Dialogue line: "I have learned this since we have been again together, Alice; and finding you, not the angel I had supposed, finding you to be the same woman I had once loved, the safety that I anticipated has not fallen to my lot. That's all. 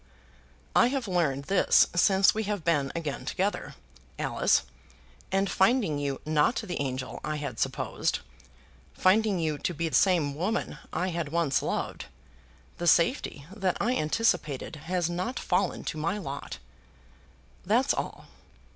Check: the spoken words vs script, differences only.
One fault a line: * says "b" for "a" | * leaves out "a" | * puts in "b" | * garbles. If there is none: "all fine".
* leaves out "the"